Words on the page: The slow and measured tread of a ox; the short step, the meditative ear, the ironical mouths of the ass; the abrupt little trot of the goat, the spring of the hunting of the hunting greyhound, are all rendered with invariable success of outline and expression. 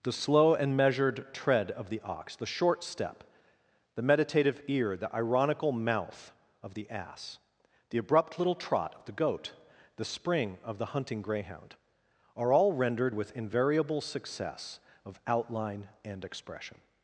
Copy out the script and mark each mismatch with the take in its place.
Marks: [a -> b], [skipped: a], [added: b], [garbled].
The slow and measured tread of [a -> the] ox; the short step, the meditative ear, the ironical [mouths -> mouth] of the ass; the abrupt little trot of the goat, the spring of the hunting [skipped: of the hunting] greyhound, are all rendered with invariable success of outline and expression.